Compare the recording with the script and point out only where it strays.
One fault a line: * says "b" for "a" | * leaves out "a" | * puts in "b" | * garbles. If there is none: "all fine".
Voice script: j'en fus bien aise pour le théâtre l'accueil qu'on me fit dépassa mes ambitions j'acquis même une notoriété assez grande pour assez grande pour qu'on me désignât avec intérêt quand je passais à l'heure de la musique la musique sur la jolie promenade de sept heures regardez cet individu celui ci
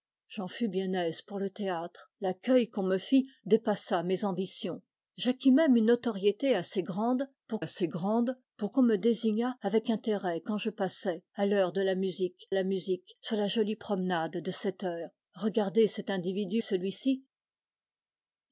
all fine